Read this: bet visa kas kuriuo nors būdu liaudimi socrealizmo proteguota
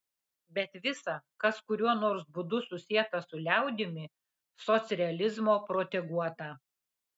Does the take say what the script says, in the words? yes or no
no